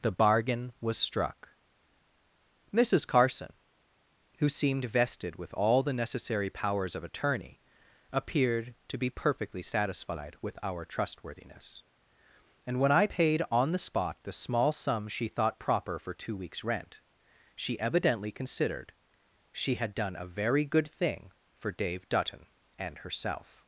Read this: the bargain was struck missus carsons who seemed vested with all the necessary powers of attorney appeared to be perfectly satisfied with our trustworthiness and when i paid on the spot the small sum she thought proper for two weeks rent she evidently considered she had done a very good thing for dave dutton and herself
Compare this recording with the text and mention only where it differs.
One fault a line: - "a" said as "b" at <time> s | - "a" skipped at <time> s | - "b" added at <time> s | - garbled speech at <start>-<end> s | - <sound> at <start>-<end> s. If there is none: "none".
- "carsons" said as "carson" at 3.0 s